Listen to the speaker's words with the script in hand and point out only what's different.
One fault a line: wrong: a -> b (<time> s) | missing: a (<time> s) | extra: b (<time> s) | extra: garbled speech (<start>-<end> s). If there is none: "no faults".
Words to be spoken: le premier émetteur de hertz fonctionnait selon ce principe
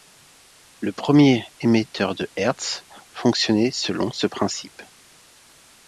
no faults